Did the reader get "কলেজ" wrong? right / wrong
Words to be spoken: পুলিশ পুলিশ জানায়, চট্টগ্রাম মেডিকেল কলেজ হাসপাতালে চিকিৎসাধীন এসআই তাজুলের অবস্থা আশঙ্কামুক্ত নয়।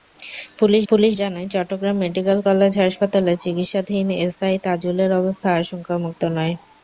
right